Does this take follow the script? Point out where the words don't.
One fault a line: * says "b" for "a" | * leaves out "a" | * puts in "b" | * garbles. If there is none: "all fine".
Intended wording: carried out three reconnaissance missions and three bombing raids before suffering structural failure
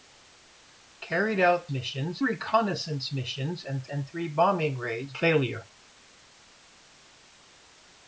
* says "missions" for "three"
* puts in "and"
* leaves out "before suffering structural"